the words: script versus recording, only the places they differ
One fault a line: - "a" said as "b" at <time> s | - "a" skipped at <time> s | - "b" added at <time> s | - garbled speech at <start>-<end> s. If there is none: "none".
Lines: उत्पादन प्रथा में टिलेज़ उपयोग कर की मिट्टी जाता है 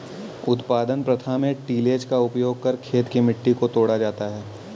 - "का" added at 2.1 s
- "खेत" added at 2.8 s
- "को तोड़ा" added at 3.5 s